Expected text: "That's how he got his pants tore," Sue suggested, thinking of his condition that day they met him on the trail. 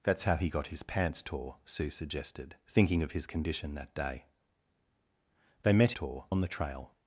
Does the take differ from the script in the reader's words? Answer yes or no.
yes